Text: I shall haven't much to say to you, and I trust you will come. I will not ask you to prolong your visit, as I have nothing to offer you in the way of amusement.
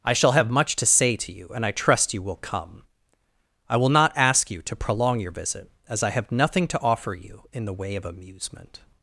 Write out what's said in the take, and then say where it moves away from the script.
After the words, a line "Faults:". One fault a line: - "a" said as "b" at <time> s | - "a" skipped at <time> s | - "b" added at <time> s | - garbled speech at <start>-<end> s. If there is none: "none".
I shall have much to say to you, and I trust you will come. I will not ask you to prolong your visit, as I have nothing to offer you in the way of amusement.
Faults:
- "haven't" said as "have" at 0.3 s